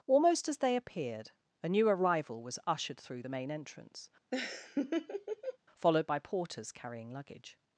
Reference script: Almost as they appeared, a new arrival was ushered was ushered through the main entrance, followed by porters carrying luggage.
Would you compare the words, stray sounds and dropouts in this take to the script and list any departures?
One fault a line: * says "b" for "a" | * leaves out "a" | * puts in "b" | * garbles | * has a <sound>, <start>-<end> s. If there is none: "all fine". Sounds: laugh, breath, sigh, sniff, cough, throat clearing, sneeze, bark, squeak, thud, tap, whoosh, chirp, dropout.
* leaves out "was ushered"
* has a laugh, 4.3-5.6 s